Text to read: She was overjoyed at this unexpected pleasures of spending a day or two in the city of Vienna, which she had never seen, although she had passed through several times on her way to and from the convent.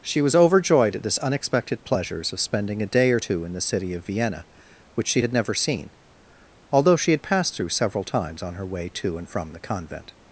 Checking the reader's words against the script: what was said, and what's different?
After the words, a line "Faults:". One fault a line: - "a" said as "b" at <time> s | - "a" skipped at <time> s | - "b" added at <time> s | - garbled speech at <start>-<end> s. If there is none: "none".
She was overjoyed at this unexpected pleasures of spending a day or two in the city of Vienna, which she had never seen, although she had passed through several times on her way to and from the convent.
Faults:
none